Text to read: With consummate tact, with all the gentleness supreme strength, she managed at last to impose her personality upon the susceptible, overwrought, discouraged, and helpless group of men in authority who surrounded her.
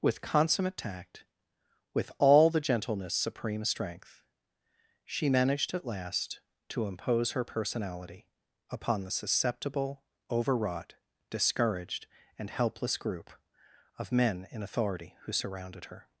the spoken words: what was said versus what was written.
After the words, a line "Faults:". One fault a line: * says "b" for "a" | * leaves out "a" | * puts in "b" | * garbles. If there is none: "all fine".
With consummate tact, with all the gentleness supreme strength, she managed at last to impose her personality upon the susceptible, overwrought, discouraged, and helpless group of men in authority who surrounded her.
Faults:
all fine